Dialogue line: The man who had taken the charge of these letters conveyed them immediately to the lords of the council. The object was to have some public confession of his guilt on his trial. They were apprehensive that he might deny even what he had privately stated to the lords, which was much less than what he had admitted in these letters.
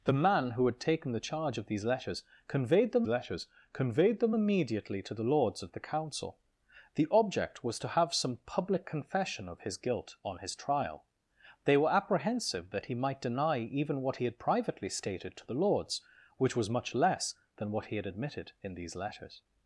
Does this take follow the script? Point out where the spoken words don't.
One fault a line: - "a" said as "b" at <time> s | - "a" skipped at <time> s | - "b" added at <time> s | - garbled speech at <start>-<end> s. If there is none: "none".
- "letters conveyed them" added at 3.1 s